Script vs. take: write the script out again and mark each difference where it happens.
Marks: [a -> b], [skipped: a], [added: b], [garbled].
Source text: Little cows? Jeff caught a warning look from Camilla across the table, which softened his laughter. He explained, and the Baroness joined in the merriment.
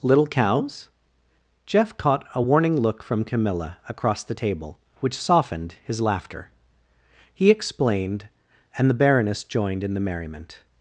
Little cows? Jeff caught a warning look from Camilla across the table, which softened his laughter. He explained, and the Baroness joined in the merriment.